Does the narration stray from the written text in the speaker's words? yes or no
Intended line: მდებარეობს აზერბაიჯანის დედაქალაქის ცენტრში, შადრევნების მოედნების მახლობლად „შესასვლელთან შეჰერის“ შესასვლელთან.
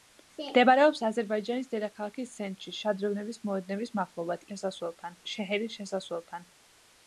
no